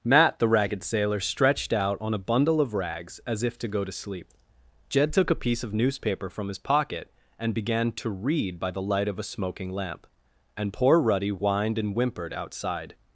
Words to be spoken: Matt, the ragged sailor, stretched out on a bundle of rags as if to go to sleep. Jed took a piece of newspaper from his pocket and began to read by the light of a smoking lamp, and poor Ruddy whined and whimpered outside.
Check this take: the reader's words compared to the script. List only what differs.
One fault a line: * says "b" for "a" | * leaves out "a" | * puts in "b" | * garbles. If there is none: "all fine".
all fine